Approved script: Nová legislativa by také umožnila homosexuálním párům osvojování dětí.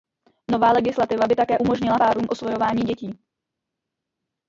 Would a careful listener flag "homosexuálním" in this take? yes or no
yes